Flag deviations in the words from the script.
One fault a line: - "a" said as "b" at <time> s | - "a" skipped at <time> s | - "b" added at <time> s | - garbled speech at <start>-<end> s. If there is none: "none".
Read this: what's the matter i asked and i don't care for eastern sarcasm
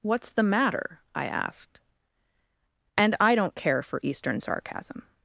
none